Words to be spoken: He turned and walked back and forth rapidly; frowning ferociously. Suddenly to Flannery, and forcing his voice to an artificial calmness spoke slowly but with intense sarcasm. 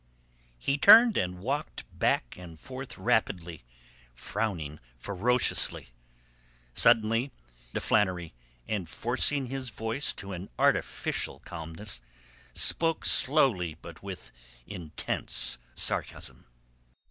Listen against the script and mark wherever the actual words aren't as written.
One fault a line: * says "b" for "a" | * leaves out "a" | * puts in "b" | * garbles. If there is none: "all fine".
all fine